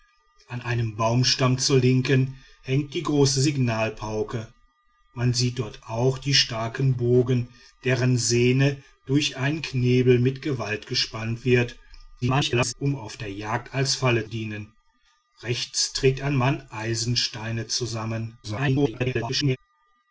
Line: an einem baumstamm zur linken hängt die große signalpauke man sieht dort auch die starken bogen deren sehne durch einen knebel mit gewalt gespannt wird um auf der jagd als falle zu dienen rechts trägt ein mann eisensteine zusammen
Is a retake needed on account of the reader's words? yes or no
yes